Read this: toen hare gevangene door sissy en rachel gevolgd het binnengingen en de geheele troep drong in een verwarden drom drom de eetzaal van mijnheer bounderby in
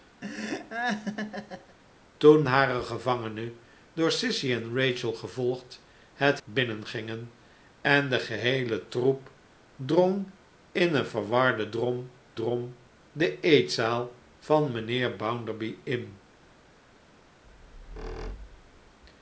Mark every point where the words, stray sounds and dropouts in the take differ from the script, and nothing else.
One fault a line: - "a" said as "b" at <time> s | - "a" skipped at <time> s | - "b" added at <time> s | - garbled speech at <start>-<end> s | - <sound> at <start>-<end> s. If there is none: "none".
- laugh at 0.2-1.8 s
- squeak at 17.5-19.0 s